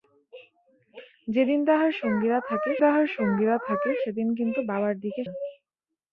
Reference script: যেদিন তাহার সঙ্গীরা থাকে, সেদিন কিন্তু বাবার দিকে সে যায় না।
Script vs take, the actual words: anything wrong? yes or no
yes